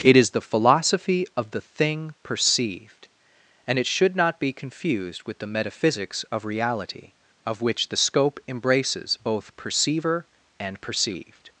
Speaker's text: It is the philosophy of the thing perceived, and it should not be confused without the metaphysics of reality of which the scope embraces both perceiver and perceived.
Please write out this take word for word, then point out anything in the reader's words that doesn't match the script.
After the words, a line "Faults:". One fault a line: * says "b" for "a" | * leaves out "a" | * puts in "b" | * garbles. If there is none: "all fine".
It is the philosophy of the thing perceived, and it should not be confused with the metaphysics of reality of which the scope embraces both perceiver and perceived.
Faults:
* says "with" for "without"